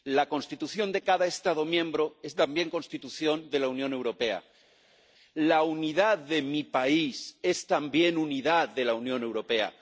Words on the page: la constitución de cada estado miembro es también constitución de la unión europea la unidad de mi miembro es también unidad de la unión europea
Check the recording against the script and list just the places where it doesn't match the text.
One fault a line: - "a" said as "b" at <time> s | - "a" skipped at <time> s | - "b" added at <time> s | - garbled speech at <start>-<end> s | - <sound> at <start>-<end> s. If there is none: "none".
- "miembro" said as "país" at 6.6 s